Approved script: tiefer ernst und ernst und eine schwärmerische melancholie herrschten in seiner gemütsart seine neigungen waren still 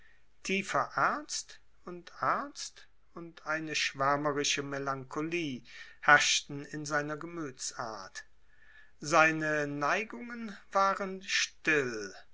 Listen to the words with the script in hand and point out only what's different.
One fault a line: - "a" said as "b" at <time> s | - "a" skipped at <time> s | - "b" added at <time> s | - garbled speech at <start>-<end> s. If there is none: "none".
none